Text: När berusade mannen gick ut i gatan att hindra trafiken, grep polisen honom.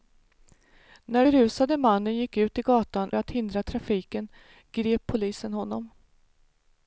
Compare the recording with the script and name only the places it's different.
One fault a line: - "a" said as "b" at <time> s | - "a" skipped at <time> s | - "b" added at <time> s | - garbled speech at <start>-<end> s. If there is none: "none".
none